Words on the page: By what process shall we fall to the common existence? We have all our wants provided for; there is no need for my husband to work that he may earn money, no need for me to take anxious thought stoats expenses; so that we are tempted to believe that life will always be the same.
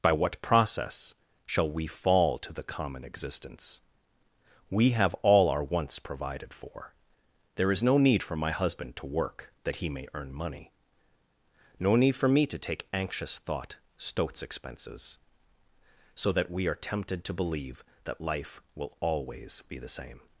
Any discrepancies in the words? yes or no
no